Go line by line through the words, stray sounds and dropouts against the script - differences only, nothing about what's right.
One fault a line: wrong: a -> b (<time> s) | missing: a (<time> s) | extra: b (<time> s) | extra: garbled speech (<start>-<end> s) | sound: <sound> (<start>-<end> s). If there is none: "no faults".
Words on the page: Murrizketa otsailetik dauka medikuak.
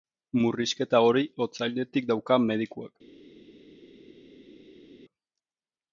extra: hori (1.1 s)